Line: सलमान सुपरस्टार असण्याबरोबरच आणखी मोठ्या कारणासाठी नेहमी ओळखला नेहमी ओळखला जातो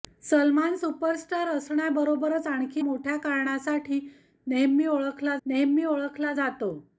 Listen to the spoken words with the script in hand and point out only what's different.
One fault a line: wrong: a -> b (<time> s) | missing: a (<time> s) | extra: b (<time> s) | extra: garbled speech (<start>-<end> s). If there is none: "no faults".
no faults